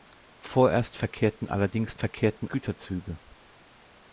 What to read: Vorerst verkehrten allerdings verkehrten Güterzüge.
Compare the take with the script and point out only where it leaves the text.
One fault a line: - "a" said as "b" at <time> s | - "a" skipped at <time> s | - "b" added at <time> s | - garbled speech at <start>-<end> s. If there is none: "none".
none